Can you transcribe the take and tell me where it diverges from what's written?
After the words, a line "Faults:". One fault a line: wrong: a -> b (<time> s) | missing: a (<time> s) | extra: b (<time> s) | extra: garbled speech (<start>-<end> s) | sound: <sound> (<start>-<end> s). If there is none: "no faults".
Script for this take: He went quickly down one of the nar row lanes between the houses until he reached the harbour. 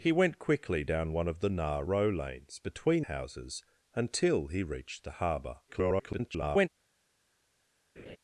He went quickly down one of the nar row lanes between houses until he reached the harbour. [garbled]
Faults:
missing: the (3.1 s)
extra: garbled speech (5.7-6.7 s)
sound: laugh (8.0-8.2 s)